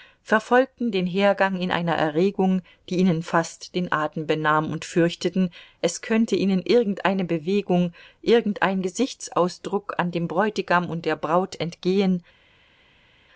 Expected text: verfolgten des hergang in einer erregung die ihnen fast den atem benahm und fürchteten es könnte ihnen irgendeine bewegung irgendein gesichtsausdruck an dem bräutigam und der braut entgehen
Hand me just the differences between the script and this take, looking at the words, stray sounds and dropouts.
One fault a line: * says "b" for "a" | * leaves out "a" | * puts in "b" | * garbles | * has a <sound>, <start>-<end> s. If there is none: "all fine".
* says "den" for "des"